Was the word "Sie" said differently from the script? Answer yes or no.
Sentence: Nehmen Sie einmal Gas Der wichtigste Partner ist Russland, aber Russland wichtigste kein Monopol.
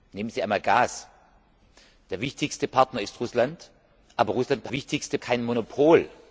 no